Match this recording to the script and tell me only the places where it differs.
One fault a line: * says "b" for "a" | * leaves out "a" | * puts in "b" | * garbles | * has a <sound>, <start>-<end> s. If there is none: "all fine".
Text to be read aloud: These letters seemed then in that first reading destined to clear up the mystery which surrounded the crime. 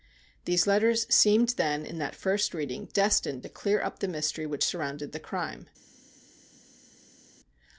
all fine